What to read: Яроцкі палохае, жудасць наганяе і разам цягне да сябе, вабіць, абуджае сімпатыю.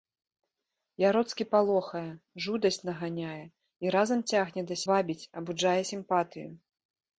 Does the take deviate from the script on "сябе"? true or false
true